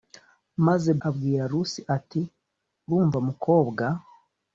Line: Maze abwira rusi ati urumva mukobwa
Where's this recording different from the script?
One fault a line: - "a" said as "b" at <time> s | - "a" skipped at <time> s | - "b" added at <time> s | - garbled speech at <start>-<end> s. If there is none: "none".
none